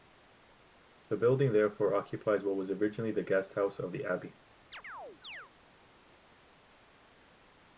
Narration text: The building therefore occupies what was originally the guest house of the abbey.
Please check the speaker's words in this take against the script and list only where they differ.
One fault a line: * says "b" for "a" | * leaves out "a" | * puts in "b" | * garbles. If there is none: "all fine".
all fine